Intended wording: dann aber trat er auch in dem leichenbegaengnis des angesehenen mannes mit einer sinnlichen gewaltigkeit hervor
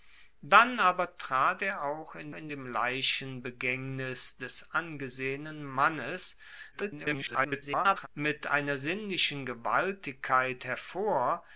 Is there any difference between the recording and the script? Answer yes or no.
yes